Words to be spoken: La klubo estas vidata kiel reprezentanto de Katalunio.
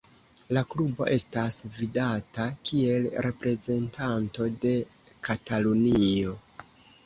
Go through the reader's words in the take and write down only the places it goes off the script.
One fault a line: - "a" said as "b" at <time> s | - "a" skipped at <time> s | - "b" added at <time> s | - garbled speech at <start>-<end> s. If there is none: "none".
none